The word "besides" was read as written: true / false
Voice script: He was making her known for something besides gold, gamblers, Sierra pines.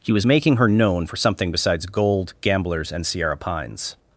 true